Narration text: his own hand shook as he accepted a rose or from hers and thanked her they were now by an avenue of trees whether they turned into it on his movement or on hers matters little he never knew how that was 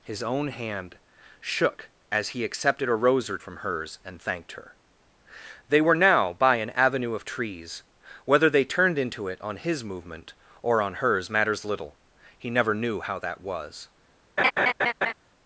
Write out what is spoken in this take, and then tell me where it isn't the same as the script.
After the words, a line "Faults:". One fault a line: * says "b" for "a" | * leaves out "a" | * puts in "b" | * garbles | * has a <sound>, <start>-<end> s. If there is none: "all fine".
his own hand shook as he accepted a rose or from hers and thanked her they were now by an avenue of trees whether they turned into it on his movement or on hers matters little he never knew how that was
Faults:
* has a laugh, 14.4-15.1 s